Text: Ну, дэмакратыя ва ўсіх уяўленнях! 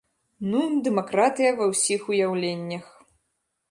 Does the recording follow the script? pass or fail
pass